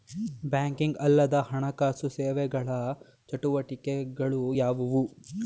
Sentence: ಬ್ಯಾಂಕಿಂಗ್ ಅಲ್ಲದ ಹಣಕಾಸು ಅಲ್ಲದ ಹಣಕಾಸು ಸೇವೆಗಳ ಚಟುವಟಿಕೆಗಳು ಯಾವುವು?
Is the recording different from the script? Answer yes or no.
yes